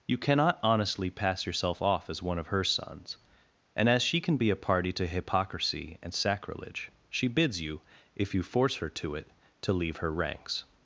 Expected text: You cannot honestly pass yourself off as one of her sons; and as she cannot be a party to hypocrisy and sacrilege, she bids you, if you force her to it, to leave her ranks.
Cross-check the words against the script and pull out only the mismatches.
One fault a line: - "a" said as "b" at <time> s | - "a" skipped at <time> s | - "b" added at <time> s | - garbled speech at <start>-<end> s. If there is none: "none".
- "cannot" said as "can" at 4.2 s